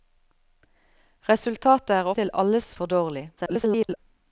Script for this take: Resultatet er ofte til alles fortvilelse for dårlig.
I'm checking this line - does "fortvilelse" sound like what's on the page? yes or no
no